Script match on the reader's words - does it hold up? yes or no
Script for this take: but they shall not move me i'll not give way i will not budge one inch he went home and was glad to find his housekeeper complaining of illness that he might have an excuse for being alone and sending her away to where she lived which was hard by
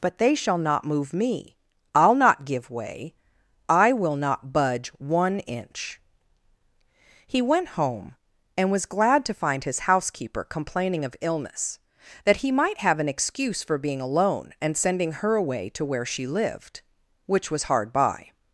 yes